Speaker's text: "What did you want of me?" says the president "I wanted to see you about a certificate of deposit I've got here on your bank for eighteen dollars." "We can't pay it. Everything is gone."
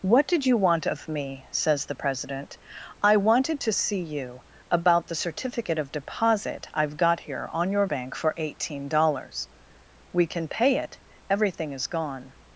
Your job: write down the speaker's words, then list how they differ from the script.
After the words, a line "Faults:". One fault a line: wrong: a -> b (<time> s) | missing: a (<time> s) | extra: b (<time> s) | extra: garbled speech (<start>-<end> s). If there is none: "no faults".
"What did you want of me?" says the president "I wanted to see you about the certificate of deposit I've got here on your bank for eighteen dollars." "We can pay it. Everything is gone."
Faults:
wrong: a -> the (5.1 s)
wrong: can't -> can (10.3 s)